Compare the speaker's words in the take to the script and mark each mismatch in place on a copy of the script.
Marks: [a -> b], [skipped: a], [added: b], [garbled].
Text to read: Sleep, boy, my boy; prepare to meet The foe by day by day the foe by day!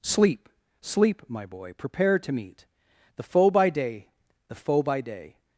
Sleep, [boy, -> sleep] my boy; prepare to meet The foe by day [skipped: by day] the foe by day!